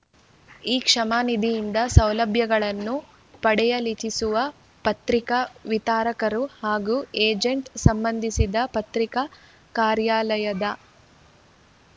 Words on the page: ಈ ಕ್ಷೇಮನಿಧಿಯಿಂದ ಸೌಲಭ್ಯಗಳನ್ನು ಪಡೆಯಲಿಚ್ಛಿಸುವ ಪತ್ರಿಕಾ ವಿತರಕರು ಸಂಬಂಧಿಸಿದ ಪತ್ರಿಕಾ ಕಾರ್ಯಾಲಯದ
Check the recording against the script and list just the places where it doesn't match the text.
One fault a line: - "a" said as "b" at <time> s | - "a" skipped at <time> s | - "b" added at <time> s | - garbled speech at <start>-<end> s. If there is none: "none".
- "ಹಾಗೂ ಏಜೆಂಟರು" added at 6.6 s